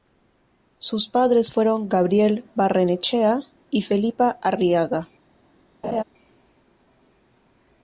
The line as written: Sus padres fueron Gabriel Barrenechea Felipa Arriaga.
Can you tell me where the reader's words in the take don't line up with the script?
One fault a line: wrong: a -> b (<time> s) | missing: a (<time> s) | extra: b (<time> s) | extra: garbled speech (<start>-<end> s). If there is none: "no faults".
extra: y (3.7 s)